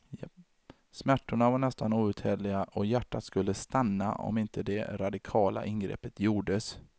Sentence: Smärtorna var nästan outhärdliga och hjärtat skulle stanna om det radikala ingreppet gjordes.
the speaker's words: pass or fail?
fail